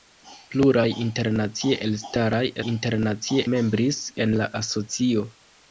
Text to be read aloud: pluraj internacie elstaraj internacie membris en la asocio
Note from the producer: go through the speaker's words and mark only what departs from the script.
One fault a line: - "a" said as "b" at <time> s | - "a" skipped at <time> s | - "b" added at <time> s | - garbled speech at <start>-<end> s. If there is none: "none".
none